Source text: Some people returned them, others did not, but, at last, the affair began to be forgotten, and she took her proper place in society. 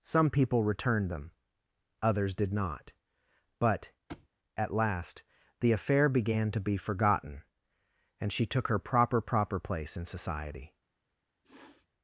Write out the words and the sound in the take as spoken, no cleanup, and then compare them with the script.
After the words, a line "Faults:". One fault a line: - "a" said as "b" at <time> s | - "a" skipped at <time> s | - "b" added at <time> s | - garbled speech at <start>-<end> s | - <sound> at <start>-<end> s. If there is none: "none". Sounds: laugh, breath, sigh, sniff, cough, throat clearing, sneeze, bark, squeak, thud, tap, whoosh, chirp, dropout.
Some people returned them, others did not, but, at last, the affair began to be forgotten, and she took her proper proper place in society.
Faults:
- thud at 4.1-4.3 s
- "proper" added at 9.2 s
- sniff at 11.4-11.9 s